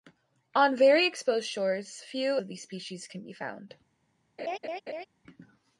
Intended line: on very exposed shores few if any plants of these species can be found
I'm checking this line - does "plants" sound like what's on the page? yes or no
no